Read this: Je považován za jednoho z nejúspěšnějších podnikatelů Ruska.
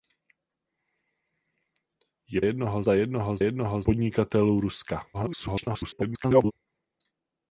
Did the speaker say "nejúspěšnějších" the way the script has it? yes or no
no